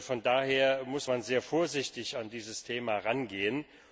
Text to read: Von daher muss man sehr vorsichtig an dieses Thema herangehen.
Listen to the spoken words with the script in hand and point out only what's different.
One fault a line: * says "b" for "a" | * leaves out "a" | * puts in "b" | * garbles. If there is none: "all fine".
all fine